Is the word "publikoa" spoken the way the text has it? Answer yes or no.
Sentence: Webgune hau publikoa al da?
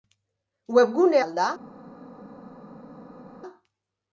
no